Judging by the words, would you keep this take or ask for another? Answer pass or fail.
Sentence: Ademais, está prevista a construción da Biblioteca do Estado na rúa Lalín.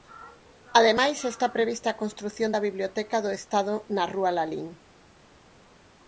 pass